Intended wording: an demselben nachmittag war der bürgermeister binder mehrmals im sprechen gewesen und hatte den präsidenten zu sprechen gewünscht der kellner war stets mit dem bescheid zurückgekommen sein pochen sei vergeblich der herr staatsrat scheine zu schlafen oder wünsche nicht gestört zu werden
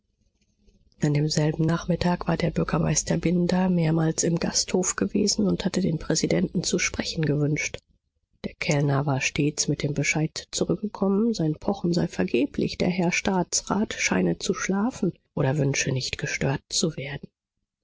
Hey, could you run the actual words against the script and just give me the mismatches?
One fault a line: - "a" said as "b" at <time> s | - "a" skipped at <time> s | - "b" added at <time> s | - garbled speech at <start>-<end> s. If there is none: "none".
- "sprechen" said as "gasthof" at 4.4 s